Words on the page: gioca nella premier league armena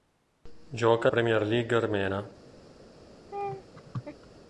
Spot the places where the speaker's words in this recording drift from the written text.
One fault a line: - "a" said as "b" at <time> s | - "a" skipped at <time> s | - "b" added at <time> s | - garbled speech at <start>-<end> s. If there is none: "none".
- "nella" skipped at 1.1 s